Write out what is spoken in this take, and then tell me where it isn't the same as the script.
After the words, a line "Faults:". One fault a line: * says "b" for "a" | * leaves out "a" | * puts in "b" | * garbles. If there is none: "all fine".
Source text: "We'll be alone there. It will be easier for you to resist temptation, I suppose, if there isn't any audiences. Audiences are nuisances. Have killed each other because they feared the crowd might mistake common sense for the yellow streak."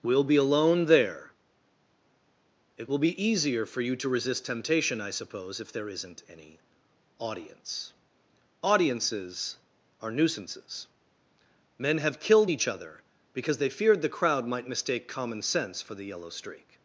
"We'll be alone there. It will be easier for you to resist temptation, I suppose, if there isn't any audience. Audiences are nuisances. Men have killed each other because they feared the crowd might mistake common sense for the yellow streak."
Faults:
* says "audience" for "audiences"
* puts in "Men"